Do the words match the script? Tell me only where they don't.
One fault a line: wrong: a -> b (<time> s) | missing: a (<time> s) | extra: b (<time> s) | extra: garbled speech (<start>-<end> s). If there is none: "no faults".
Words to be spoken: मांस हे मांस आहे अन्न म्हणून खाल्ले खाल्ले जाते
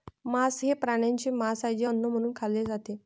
extra: प्राण्यांचे (0.7 s)
extra: जे (1.7 s)
missing: खाल्ले (2.6 s)